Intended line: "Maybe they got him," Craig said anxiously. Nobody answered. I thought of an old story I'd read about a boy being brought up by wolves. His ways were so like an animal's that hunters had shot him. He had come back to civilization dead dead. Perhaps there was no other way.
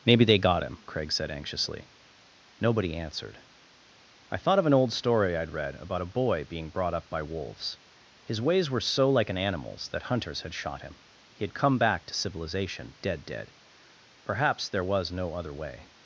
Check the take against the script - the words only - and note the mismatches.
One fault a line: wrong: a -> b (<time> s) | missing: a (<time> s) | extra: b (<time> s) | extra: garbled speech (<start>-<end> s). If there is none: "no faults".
no faults